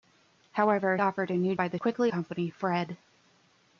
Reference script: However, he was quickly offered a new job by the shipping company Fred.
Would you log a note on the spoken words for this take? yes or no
yes